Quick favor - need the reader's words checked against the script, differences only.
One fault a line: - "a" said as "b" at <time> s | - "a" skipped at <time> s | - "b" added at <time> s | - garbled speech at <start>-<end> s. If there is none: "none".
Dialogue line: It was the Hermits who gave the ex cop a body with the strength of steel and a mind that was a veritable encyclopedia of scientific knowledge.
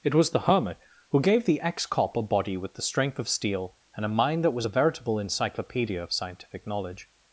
- "Hermits" said as "Hermit" at 0.4 s